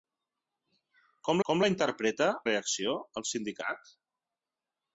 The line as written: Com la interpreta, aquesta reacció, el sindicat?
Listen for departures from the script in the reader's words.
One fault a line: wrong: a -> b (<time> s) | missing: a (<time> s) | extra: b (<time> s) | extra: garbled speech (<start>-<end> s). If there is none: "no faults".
extra: com (1.5 s)
missing: aquesta (2.3 s)